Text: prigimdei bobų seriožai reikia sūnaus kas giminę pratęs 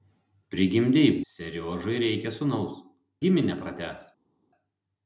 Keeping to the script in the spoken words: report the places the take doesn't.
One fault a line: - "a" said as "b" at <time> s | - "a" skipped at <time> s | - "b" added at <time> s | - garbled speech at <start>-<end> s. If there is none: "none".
- "bobų" skipped at 1.1 s
- "kas" skipped at 2.8 s